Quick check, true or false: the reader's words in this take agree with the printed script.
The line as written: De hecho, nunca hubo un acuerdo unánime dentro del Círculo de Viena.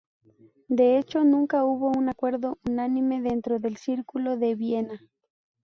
true